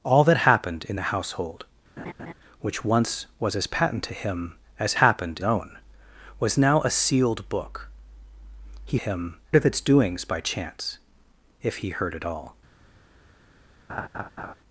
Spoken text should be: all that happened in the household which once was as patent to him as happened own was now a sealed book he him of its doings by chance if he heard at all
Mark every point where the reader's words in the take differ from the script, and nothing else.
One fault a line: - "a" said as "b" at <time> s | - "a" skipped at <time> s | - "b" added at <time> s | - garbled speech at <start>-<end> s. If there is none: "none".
none